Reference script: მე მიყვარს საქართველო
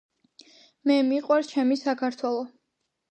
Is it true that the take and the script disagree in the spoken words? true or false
true